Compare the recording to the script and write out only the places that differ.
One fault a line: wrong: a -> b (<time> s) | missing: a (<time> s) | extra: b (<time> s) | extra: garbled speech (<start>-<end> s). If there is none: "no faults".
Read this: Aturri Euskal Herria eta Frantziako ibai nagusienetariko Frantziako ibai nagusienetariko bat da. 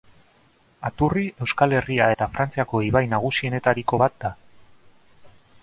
missing: Frantziako ibai nagusienetariko (4.0 s)